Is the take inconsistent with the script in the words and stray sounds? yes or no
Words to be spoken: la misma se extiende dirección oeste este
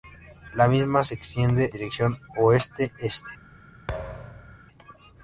yes